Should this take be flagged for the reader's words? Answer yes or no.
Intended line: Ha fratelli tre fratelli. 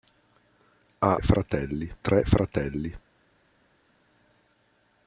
no